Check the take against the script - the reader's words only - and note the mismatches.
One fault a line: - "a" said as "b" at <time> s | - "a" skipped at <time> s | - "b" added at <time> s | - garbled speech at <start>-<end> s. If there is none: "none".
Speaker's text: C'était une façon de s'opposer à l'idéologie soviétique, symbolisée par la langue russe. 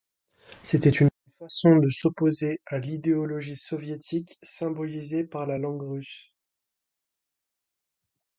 none